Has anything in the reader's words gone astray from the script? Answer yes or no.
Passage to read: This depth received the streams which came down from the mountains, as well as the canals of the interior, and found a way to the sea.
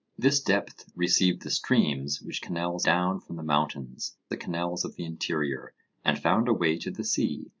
yes